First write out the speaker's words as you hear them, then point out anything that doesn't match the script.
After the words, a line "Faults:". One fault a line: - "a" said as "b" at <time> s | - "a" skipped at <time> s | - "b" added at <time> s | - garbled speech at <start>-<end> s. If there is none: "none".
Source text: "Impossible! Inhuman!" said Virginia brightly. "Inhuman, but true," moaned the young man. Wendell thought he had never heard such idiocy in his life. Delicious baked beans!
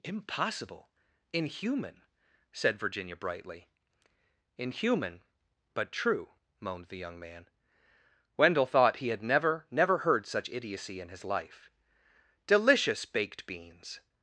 "Impossible! Inhuman!" said Virginia brightly. "Inhuman, but true," moaned the young man. Wendell thought he had never never heard such idiocy in his life. Delicious baked beans!
Faults:
- "never" added at 9.7 s